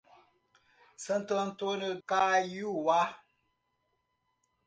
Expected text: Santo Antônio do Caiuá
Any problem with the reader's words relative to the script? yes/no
yes